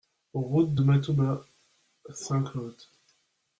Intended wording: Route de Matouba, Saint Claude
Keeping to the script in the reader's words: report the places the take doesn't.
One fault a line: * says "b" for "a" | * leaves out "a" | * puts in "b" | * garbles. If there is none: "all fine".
all fine